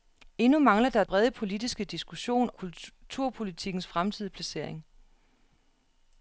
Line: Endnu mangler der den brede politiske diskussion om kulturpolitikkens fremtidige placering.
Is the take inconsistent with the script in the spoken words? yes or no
yes